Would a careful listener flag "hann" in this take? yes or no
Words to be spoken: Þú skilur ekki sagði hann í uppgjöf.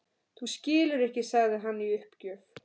no